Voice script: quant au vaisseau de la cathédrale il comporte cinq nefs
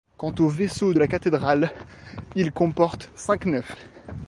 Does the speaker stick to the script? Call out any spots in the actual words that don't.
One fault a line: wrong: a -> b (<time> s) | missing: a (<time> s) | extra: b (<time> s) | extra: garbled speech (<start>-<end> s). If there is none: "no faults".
no faults